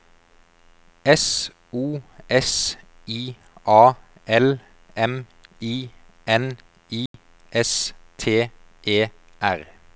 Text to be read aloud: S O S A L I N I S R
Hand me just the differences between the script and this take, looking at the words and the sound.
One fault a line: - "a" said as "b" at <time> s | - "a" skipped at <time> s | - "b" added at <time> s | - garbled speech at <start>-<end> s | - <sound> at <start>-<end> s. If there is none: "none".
- "I" added at 3.1 s
- "M" added at 5.0 s
- dropout at 7.1-7.1 s
- "T E" added at 8.2 s